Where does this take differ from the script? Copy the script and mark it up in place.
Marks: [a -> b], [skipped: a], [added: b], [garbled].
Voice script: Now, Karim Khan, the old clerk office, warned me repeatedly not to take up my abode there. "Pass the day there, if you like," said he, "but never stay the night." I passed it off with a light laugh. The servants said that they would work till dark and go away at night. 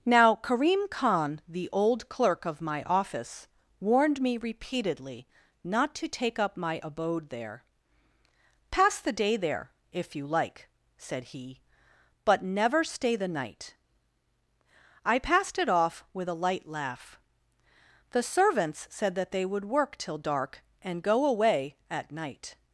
Now, Karim Khan, the old clerk [added: of my] office, warned me repeatedly not to take up my abode there. "Pass the day there, if you like," said he, "but never stay the night." I passed it off with a light laugh. The servants said that they would work till dark and go away at night.